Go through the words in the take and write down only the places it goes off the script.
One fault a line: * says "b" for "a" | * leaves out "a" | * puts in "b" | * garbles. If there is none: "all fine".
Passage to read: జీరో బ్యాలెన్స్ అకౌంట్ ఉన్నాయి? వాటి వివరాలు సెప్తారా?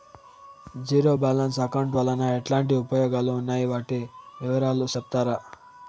* puts in "వలన ఎట్లాంటి ఉపయోగాలు"